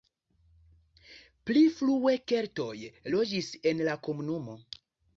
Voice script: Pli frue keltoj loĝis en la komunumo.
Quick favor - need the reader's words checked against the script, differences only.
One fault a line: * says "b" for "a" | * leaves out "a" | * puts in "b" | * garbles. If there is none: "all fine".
all fine